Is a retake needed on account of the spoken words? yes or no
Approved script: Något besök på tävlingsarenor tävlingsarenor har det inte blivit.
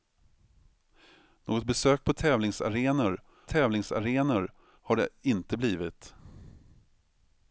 no